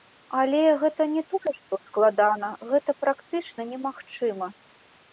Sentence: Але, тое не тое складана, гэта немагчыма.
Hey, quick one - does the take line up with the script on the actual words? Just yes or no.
no